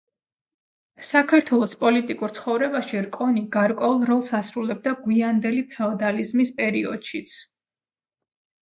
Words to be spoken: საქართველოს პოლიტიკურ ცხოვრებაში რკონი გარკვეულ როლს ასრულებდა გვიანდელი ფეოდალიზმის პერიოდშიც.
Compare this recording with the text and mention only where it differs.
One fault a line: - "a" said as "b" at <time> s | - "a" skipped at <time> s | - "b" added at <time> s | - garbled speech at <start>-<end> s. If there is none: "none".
none